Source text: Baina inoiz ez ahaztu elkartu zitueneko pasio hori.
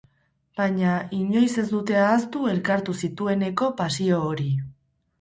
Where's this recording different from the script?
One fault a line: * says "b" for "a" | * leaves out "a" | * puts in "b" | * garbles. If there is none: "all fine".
* puts in "dute"